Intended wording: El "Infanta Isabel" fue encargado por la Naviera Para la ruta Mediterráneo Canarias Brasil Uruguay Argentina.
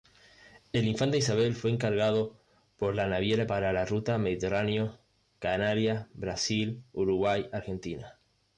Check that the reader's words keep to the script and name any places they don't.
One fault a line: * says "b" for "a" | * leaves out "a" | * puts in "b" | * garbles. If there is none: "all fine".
all fine